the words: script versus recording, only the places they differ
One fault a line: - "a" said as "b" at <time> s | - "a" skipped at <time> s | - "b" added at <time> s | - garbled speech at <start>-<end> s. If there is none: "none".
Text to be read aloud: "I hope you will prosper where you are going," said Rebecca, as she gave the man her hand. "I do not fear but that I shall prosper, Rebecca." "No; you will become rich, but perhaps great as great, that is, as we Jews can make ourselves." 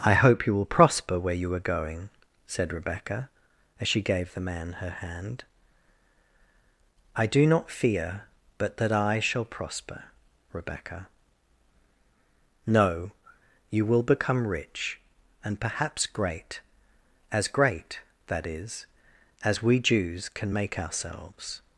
- "but" said as "and" at 15.4 s